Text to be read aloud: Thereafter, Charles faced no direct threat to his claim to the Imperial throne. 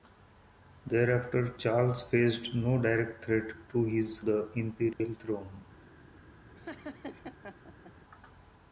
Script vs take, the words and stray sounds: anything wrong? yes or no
yes